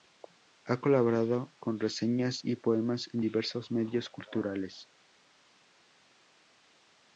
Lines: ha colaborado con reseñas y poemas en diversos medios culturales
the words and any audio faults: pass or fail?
pass